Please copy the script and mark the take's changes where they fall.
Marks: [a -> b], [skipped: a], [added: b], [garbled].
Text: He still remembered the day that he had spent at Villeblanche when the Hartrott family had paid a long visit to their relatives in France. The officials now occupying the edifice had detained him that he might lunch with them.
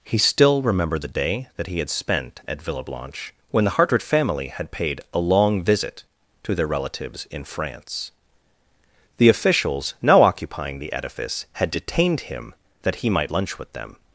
He still remembered the day that he had spent at Villeblanche when the Hartrott family had paid a long visit to their relatives in France. The officials now occupying the edifice had detained him that he might lunch with them.